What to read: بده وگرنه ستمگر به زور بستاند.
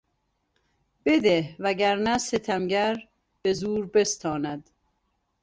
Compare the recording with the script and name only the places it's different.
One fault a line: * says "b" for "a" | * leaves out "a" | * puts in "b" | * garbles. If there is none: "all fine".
all fine